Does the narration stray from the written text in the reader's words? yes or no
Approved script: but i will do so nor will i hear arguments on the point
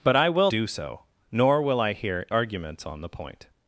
no